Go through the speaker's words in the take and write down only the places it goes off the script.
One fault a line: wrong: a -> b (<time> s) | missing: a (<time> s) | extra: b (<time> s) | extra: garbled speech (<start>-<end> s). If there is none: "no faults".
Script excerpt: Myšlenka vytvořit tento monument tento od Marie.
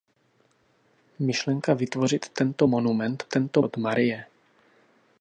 no faults